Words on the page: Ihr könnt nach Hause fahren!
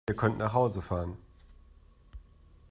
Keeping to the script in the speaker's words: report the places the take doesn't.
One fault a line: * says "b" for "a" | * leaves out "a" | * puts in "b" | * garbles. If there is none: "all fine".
all fine